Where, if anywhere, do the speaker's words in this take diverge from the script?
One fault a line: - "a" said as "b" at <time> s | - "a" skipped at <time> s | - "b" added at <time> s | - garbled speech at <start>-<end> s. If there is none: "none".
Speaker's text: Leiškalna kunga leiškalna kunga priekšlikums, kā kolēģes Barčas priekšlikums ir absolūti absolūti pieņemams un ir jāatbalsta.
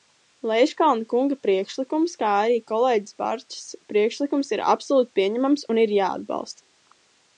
- "leiškalna kunga" skipped at 1.4 s
- "arī" added at 2.4 s
- "absolūti" skipped at 5.1 s